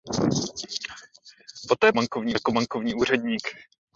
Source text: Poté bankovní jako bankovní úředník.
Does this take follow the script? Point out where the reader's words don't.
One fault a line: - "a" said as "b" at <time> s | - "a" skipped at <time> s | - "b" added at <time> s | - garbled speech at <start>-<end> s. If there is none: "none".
none